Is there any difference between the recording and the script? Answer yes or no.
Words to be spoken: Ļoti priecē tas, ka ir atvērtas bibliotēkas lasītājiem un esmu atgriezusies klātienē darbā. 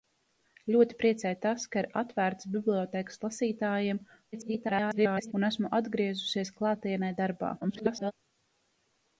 yes